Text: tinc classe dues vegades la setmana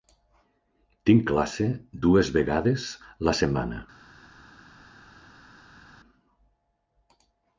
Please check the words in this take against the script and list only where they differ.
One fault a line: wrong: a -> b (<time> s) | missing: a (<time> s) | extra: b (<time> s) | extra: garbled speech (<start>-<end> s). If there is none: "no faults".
no faults